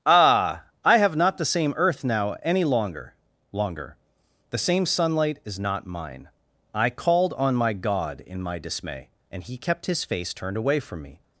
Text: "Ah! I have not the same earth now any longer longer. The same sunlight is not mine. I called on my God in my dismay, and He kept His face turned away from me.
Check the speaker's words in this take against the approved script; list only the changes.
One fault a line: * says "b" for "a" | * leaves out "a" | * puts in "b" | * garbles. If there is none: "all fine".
all fine